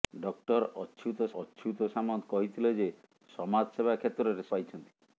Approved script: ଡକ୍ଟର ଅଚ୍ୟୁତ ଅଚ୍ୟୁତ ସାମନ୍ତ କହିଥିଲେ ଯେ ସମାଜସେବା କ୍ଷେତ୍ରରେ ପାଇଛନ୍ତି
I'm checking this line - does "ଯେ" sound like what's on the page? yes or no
yes